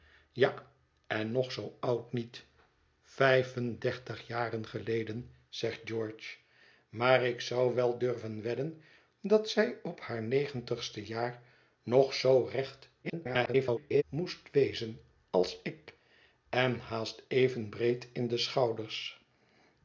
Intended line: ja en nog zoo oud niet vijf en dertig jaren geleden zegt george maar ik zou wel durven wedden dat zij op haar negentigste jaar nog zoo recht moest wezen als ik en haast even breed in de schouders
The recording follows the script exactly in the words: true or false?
false